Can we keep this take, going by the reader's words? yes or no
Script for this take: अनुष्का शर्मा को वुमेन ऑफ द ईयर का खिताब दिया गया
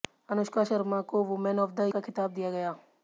no